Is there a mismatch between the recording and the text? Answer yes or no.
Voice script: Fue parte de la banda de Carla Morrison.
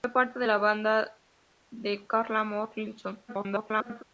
yes